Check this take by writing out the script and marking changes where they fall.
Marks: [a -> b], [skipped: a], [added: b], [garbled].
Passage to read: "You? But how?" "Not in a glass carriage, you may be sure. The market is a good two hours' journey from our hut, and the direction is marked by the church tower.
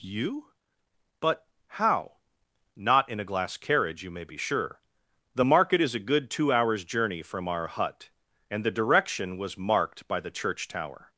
"You? But how?" "Not in a glass carriage, you may be sure. The market is a good two hours' journey from our hut, and the direction [is -> was] marked by the church tower.